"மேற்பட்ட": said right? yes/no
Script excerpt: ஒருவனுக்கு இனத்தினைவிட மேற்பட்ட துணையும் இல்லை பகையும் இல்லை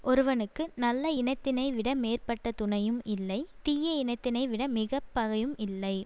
yes